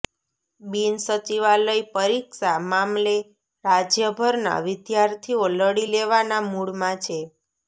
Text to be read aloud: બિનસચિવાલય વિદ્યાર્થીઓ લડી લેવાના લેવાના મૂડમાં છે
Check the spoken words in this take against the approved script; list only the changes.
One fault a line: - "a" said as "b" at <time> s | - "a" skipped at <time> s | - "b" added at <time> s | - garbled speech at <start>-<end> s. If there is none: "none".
- "પરીક્ષા મામલે રાજ્યભરના" added at 1.9 s
- "લેવાના" skipped at 6.4 s